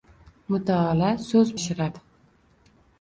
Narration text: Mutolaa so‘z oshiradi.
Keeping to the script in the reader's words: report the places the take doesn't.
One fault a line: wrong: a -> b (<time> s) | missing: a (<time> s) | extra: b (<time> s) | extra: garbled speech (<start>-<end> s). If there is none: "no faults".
no faults